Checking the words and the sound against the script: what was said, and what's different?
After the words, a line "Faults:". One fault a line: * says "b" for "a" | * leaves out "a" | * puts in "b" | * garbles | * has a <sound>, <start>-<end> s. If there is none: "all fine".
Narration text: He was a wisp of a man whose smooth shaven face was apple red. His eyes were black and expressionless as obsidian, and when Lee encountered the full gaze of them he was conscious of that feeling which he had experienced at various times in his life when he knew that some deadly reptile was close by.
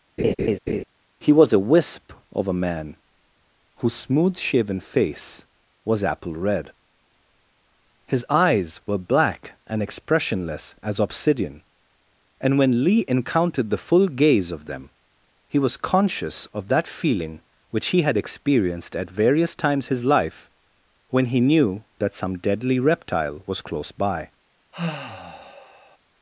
He was a wisp of a man whose smooth shaven face was apple red. His eyes were black and expressionless as obsidian, and when Lee encountered the full gaze of them he was conscious of that feeling which he had experienced at various times his life when he knew that some deadly reptile was close by.
Faults:
* has a laugh, 0.2-0.8 s
* leaves out "in"
* has a sigh, 24.7-26.0 s